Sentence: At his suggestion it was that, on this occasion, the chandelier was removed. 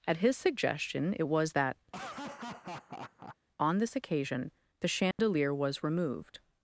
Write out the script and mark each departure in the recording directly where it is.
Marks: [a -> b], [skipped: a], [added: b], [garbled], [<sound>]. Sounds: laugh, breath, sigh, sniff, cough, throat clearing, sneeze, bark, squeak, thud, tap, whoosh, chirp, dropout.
At his suggestion it was that, [laugh] on this occasion, the chandelier [dropout] was removed.